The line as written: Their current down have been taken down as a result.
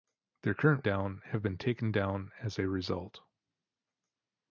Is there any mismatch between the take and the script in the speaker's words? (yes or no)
no